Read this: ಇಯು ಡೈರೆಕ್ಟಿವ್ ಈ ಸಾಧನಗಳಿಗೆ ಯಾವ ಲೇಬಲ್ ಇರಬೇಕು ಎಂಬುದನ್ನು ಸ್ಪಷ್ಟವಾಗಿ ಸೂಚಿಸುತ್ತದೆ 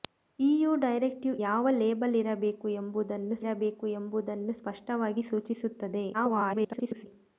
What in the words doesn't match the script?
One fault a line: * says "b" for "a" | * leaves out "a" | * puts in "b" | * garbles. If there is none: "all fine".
* says "ಯಾವ ಲೇಬಲ್ ಇರಬೇಕು ಎಂಬುದನ್ನು" for "ಈ ಸಾಧನಗಳಿಗೆ ಯಾವ ಲೇಬಲ್"
* garbles